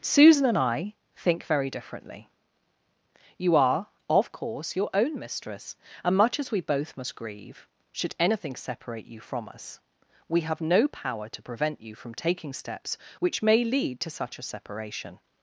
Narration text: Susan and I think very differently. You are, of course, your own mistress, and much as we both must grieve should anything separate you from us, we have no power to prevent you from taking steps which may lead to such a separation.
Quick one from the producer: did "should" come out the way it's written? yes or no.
yes